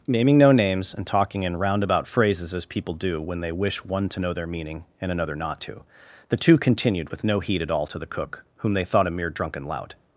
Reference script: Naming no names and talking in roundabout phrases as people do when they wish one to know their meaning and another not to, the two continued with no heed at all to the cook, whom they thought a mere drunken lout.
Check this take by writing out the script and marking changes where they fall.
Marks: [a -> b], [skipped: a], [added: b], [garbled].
Naming no names and talking in roundabout phrases as people do when they wish one to know their meaning and another not to, the two continued with no heed at all to the cook, whom they thought a mere drunken lout.